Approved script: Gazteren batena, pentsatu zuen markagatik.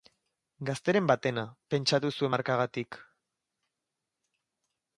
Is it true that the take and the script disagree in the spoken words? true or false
false